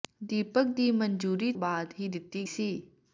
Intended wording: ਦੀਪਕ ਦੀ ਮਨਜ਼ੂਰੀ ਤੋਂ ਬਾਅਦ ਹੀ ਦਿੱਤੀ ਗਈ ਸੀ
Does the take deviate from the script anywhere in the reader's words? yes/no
yes